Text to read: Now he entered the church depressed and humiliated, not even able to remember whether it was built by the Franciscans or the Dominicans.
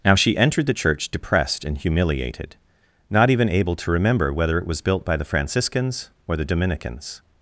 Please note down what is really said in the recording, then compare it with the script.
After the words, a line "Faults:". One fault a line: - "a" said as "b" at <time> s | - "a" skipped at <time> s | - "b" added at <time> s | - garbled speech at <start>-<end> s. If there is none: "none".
Now she entered the church depressed and humiliated, not even able to remember whether it was built by the Franciscans or the Dominicans.
Faults:
- "he" said as "she" at 0.1 s